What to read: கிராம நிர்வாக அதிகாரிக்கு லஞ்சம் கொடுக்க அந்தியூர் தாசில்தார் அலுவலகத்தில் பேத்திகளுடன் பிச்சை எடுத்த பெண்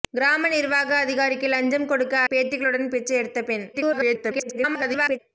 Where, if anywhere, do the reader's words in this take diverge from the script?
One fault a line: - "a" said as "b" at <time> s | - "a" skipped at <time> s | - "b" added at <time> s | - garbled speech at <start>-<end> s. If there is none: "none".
- "அந்தியூர் தாசில்தார் அலுவலகத்தில்" skipped at 2.1 s
- garbled speech at 3.7-5.2 s